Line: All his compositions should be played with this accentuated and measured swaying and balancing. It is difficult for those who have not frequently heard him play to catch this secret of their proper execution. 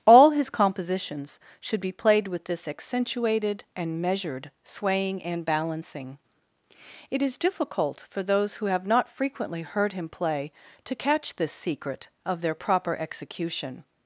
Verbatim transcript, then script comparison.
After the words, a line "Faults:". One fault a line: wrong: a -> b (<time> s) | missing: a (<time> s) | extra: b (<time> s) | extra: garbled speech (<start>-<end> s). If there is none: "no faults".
All his compositions should be played with this accentuated and measured swaying and balancing. It is difficult for those who have not frequently heard him play to catch this secret of their proper execution.
Faults:
no faults